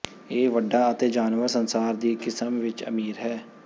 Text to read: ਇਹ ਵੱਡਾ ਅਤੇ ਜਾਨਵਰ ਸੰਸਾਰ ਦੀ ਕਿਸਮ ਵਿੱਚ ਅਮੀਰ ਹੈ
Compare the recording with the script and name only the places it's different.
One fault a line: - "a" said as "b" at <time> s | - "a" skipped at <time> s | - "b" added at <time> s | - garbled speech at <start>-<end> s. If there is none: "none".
none